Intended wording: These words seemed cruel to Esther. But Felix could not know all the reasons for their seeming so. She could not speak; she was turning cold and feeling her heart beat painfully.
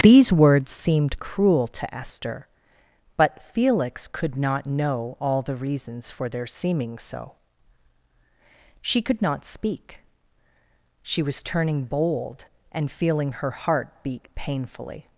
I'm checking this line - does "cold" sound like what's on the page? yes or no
no